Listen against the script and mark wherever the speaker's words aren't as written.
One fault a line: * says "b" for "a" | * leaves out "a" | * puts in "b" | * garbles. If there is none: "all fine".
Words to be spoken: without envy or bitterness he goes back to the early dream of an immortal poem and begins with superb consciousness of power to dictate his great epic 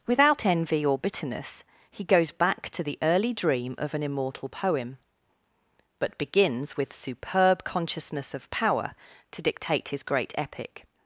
* says "but" for "and"